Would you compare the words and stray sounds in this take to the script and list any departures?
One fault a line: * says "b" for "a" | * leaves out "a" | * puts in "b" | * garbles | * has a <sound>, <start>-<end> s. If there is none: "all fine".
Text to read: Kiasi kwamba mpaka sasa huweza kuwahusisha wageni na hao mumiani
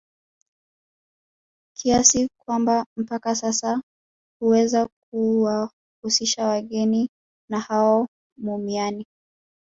all fine